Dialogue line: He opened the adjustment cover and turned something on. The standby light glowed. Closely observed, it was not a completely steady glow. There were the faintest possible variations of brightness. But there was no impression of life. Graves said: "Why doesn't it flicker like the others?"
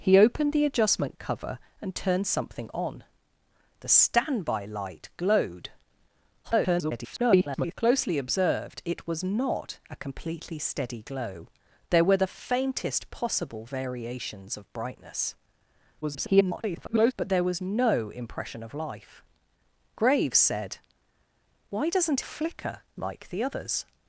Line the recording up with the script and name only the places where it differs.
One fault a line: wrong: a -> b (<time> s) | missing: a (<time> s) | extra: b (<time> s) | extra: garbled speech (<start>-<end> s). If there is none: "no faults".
extra: garbled speech (6.4-7.7 s)
extra: garbled speech (16.0-17.1 s)
missing: it (22.2 s)